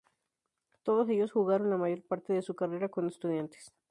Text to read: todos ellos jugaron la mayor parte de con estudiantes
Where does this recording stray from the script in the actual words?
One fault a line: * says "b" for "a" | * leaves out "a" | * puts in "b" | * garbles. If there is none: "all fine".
* puts in "su carrera"